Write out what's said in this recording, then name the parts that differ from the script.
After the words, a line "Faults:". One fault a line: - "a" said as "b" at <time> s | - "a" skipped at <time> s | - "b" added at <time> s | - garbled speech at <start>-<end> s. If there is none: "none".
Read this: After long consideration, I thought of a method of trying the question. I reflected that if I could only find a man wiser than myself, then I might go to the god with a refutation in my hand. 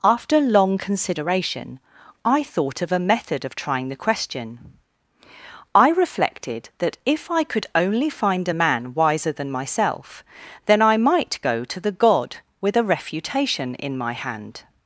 After long consideration, I thought of a method of trying the question. I reflected that if I could only find a man wiser than myself, then I might go to the god with a refutation in my hand.
Faults:
none